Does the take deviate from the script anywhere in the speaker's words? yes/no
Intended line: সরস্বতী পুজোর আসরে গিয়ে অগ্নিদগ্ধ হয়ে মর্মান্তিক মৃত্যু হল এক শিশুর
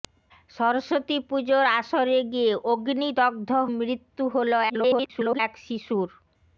yes